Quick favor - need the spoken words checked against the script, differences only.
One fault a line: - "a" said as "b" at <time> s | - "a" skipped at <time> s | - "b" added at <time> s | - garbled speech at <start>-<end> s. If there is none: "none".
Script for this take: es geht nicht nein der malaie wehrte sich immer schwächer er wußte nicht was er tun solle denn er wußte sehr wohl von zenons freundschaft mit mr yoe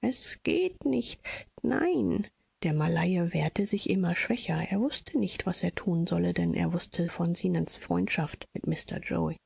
- "sehr wohl" skipped at 7.1 s